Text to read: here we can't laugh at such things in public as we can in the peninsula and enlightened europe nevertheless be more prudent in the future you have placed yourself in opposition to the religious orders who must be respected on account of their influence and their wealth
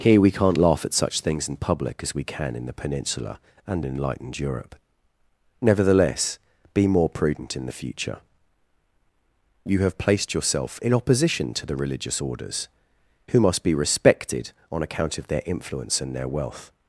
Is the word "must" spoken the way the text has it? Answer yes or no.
yes